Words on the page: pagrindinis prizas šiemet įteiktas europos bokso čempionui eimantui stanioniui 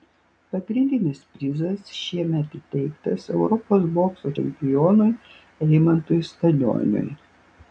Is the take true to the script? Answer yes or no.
yes